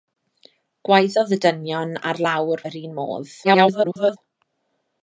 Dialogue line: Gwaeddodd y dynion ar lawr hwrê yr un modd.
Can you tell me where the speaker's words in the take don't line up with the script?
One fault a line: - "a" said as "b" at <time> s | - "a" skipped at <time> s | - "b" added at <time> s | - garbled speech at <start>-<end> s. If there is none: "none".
- "hwrê" skipped at 2.6 s
- garbled speech at 3.4-4.2 s